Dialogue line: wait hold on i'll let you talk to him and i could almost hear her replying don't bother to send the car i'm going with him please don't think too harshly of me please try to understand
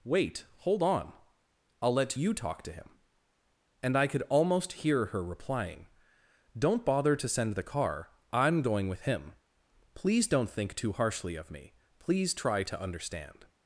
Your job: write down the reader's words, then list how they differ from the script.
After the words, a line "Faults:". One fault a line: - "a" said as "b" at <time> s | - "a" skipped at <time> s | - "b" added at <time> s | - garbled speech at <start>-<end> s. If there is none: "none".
wait hold on i'll let you talk to him and i could almost hear her replying don't bother to send the car i'm going with him please don't think too harshly of me please try to understand
Faults:
none